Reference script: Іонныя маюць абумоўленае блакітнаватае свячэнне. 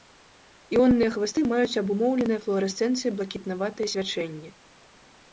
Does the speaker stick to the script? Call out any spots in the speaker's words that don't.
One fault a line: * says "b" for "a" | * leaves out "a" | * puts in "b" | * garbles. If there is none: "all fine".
* puts in "хвасты"
* puts in "флуарэсцэнцыяй"